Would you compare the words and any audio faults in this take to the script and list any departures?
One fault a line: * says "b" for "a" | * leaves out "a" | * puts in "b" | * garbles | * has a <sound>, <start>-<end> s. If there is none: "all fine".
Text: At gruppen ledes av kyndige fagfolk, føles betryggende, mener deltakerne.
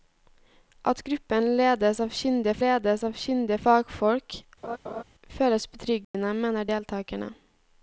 * puts in "ledes av kyndige"
* has a laugh, 4.6-5.0 s
* has a dropout, 6.0-6.1 s